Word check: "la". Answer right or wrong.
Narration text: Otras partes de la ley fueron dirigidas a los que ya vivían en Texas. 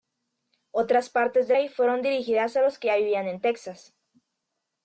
wrong